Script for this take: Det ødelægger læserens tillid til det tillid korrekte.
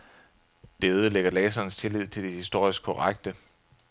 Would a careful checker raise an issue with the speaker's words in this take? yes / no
yes